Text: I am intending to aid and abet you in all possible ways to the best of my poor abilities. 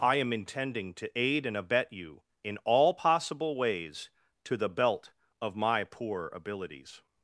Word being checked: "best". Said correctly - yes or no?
no